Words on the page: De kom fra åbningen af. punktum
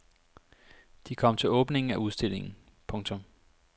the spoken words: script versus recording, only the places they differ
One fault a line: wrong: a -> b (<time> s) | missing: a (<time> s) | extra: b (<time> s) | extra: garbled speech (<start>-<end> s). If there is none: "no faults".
wrong: fra -> til (1.4 s)
extra: udstillingen (1.9 s)